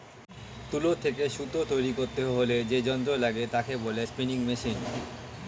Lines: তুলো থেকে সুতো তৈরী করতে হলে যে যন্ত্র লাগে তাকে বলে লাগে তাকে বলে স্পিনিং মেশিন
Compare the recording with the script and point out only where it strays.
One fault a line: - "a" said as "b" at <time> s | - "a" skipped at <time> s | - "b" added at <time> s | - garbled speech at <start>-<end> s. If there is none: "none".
- "লাগে তাকে বলে" skipped at 4.0 s